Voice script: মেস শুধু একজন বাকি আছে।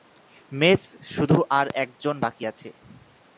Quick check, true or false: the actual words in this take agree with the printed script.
false